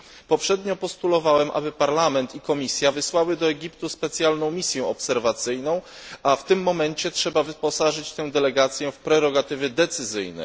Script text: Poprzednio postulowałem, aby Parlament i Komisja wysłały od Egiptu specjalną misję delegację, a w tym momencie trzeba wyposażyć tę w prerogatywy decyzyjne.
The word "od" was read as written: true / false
false